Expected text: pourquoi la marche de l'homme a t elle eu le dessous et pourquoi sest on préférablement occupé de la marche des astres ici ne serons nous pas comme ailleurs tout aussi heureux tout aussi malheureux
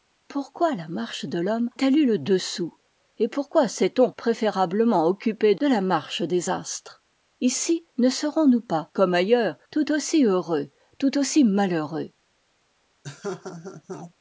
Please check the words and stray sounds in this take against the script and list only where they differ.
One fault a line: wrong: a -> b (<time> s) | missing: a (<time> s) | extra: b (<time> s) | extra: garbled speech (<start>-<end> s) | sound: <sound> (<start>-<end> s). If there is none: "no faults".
missing: a (1.7 s)
sound: laugh (13.0-14.1 s)